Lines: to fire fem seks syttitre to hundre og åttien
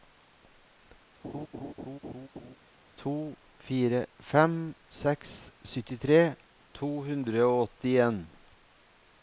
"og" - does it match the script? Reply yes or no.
yes